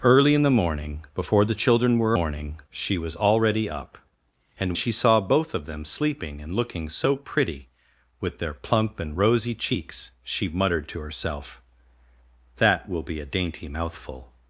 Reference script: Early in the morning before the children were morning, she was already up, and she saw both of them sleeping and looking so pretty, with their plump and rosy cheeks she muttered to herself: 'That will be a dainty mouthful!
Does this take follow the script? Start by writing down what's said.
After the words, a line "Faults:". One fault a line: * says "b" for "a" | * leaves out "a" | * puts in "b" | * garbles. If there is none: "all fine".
Early in the morning before the children were morning, she was already up, and she saw both of them sleeping and looking so pretty, with their plump and rosy cheeks she muttered to herself: 'That will be a dainty mouthful!
Faults:
all fine